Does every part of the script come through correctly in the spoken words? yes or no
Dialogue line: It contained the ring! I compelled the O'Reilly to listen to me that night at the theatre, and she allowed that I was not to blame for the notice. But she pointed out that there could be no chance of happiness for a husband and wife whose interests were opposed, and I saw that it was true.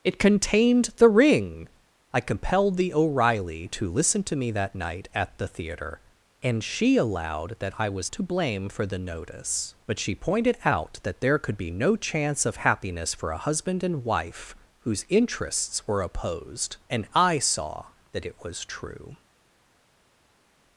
no